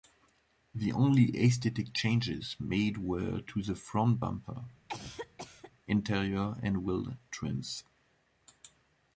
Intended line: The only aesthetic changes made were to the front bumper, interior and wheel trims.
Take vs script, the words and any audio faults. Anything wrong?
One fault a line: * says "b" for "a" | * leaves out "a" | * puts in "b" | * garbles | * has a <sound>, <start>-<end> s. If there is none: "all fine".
* has a cough, 4.9-5.7 s